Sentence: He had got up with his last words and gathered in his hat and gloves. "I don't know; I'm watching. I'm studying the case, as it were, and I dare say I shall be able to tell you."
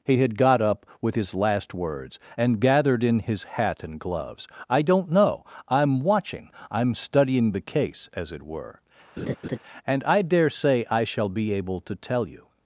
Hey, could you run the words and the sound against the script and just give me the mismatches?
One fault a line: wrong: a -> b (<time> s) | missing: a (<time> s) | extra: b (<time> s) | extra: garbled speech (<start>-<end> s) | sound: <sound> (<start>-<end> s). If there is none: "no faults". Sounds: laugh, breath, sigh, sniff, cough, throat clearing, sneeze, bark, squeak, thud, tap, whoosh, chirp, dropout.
sound: laugh (9.2-9.6 s)